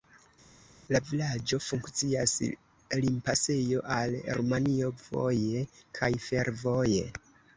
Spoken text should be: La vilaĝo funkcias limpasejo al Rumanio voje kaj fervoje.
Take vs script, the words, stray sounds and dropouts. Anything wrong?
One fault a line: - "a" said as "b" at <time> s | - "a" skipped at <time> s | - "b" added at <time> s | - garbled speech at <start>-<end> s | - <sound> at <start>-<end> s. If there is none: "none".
none